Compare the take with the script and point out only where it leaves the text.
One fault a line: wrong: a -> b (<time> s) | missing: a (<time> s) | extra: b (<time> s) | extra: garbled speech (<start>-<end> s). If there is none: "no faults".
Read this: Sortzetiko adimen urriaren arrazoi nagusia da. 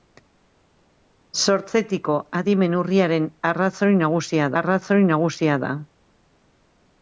extra: arrazoi nagusia (4.6 s)